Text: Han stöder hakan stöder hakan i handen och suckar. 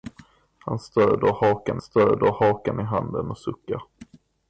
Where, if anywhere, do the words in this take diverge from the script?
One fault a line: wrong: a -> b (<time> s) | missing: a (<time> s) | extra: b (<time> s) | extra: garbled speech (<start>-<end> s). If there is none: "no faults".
no faults